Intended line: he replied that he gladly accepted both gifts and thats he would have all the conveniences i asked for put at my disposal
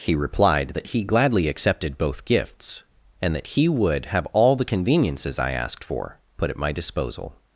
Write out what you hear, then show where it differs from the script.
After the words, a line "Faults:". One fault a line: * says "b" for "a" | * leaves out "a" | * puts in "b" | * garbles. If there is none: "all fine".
he replied that he gladly accepted both gifts and that he would have all the conveniences i asked for put at my disposal
Faults:
* says "that" for "thats"